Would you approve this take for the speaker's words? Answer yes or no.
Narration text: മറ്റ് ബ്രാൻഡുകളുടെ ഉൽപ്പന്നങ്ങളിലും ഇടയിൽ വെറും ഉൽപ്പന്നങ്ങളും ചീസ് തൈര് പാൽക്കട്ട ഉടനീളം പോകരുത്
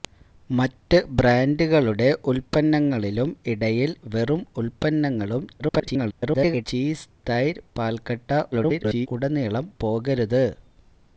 no